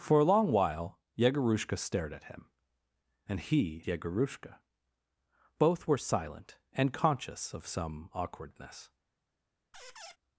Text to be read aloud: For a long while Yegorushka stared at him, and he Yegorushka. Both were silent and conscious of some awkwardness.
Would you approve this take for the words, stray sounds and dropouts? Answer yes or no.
no